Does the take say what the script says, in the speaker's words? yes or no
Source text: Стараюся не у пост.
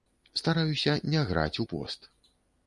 no